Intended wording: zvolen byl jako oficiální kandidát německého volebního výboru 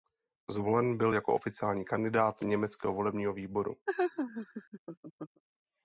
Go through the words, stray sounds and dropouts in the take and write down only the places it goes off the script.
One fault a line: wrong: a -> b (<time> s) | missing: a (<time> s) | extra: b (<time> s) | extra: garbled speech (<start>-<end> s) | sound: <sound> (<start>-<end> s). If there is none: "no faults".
sound: laugh (3.9-5.4 s)